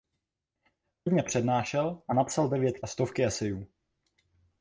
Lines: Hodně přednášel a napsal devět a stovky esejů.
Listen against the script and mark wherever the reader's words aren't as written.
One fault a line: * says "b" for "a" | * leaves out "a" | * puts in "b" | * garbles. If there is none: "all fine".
all fine